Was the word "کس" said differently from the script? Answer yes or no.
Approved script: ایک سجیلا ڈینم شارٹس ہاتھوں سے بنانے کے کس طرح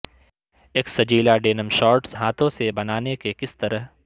no